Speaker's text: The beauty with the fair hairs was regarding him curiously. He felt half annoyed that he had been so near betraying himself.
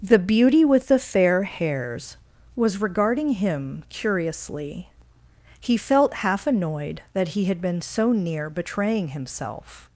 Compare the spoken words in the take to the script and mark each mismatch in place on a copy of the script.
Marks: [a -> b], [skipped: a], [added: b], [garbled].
The beauty with the fair hairs was regarding him curiously. He felt half annoyed that he had been so near betraying himself.